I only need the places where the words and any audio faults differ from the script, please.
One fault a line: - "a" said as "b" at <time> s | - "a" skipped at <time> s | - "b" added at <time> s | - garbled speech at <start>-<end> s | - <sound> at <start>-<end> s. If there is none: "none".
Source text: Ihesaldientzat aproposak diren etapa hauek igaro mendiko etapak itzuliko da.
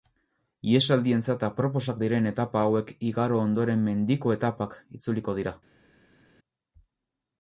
- "ondoren" added at 3.5 s
- "da" said as "dira" at 5.4 s